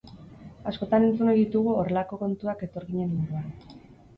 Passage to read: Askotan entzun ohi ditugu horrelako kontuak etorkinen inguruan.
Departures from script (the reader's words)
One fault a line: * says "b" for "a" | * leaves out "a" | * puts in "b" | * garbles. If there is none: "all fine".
all fine